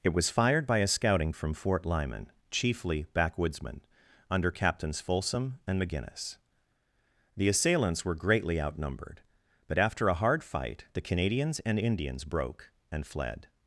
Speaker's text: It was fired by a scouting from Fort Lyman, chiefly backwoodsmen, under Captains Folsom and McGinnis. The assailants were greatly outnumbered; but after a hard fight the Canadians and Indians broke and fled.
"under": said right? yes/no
yes